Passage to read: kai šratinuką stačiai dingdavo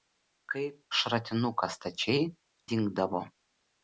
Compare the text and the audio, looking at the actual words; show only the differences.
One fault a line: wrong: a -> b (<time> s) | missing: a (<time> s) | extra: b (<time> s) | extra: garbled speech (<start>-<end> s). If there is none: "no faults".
no faults